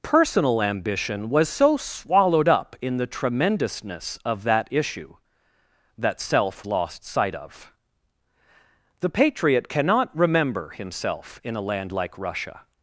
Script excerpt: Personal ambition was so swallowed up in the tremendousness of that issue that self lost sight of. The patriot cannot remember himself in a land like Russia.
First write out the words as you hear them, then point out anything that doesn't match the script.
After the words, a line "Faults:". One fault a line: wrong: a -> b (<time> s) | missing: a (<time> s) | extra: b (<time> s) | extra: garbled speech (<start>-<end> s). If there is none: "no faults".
Personal ambition was so swallowed up in the tremendousness of that issue that self lost sight of. The patriot cannot remember himself in a land like Russia.
Faults:
no faults